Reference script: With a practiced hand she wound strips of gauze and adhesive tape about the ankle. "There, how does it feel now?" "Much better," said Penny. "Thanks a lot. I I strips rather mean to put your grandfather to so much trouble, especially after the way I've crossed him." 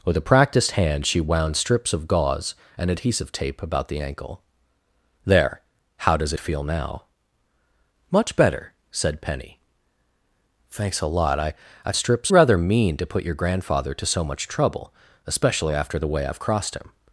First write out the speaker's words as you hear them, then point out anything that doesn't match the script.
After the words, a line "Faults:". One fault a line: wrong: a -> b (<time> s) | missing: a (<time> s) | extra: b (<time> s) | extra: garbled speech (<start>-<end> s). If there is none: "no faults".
With a practiced hand she wound strips of gauze and adhesive tape about the ankle. "There, how does it feel now?" "Much better," said Penny. "Thanks a lot. I I strips rather mean to put your grandfather to so much trouble, especially after the way I've crossed him."
Faults:
no faults